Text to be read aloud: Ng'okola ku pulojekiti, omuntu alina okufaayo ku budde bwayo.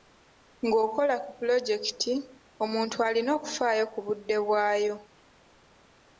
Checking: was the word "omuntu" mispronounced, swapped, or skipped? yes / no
no